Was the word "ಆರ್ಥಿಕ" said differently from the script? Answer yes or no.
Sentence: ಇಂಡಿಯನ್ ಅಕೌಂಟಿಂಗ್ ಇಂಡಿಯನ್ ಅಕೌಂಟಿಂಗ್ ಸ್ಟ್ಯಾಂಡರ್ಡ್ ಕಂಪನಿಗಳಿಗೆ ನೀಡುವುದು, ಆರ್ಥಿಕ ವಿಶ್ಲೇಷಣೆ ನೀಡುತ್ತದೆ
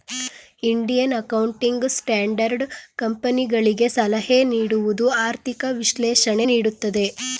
no